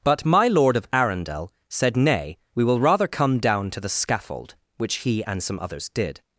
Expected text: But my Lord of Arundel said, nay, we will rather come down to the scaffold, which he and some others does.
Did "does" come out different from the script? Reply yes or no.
yes